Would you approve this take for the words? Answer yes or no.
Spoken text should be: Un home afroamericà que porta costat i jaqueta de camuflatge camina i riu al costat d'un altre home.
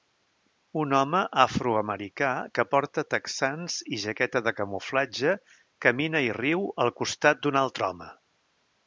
no